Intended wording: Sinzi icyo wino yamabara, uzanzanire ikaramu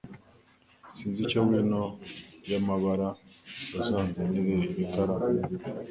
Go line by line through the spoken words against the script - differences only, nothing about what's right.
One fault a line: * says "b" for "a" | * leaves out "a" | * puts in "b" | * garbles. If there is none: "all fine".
all fine